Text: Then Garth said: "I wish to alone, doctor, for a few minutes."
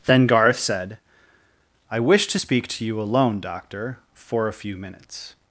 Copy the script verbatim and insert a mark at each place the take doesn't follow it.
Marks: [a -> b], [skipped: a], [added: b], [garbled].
Then Garth said: "I wish to [added: speak to you] alone, doctor, for a few minutes."